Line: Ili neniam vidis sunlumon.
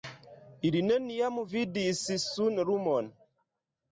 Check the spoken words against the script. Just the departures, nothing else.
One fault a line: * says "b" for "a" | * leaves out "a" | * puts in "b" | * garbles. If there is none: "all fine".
all fine